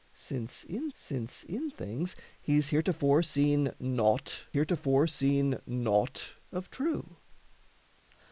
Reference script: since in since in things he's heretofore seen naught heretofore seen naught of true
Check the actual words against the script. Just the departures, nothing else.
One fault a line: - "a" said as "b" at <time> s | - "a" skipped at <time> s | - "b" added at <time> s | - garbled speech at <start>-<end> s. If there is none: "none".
none